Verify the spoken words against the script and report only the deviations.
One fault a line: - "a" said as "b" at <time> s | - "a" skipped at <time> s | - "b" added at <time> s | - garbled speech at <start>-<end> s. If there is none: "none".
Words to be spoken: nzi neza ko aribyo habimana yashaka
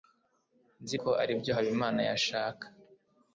- "neza" skipped at 1.0 s